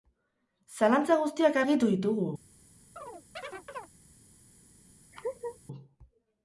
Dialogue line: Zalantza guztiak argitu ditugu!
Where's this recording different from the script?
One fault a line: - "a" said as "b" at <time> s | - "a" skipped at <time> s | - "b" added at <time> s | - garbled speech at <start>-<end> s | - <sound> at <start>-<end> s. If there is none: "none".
- chirp at 3.0-3.9 s
- laugh at 5.1-5.6 s